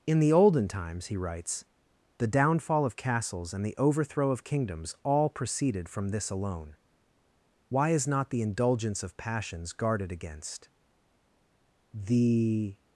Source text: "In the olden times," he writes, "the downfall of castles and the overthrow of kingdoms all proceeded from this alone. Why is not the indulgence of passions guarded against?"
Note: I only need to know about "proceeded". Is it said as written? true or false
true